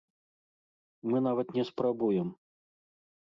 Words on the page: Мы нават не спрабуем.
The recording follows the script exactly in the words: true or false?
true